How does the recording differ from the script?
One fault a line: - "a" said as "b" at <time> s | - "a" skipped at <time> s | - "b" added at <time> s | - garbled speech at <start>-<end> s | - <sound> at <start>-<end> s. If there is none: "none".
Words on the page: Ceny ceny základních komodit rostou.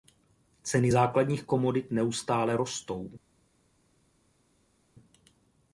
- "ceny" skipped at 0.9 s
- "neustále" added at 1.9 s